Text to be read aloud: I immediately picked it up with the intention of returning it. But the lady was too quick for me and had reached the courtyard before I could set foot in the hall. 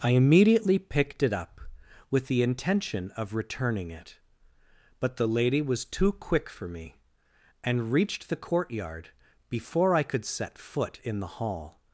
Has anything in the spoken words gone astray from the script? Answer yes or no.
yes